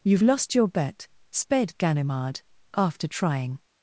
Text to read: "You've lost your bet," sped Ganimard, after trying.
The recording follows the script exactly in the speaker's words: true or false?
true